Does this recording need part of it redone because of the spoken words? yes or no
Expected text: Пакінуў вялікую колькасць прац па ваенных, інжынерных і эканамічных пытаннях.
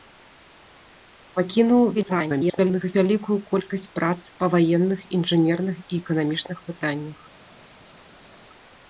yes